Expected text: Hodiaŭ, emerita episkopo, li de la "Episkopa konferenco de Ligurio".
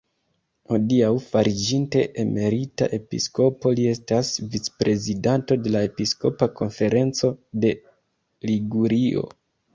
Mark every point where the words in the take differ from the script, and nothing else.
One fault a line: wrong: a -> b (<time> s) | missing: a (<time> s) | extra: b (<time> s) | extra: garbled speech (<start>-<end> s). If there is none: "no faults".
extra: fariĝinte (1.2 s)
extra: estas vicprezidanto (3.9 s)